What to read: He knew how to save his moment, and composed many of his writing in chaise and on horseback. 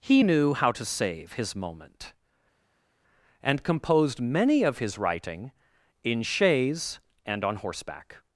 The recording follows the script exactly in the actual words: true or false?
true